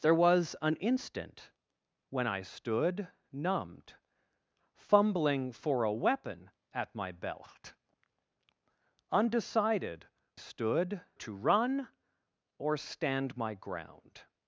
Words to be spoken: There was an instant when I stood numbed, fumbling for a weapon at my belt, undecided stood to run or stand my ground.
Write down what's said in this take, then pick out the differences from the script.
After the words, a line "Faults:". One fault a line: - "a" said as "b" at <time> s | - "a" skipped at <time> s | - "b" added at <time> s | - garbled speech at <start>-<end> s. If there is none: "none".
There was an instant when I stood numbed, fumbling for a weapon at my belt, undecided stood to run or stand my ground.
Faults:
none